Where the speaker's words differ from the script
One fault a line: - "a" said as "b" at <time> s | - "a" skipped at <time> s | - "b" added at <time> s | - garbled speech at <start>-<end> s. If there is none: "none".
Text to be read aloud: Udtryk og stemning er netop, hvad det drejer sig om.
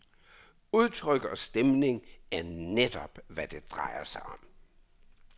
none